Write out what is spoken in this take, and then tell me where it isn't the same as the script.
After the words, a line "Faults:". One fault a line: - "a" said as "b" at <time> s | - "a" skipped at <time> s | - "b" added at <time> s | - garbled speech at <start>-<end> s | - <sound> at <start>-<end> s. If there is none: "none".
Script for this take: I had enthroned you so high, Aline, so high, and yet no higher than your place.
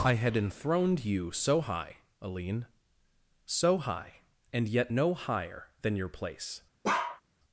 I had enthroned you so high, Aline, so high, and yet no higher than your place.
Faults:
- bark at 6.8-7.2 s